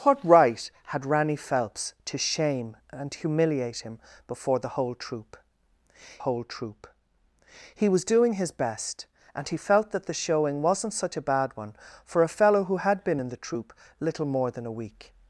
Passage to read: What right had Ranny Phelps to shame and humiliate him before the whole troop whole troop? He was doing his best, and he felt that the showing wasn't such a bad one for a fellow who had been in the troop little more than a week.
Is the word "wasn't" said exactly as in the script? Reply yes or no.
yes